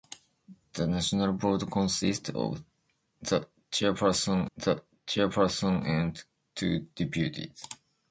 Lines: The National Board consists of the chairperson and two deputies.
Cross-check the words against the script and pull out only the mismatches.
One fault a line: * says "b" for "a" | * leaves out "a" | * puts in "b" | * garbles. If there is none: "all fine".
* puts in "the chairperson"